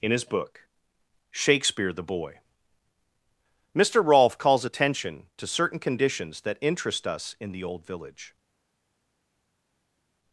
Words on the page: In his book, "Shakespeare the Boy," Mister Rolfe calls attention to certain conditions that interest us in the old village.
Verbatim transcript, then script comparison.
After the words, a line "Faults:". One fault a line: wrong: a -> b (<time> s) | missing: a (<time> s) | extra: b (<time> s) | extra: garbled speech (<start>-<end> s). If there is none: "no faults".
In his book, "Shakespeare the Boy," Mister Rolfe calls attention to certain conditions that interest us in the old village.
Faults:
no faults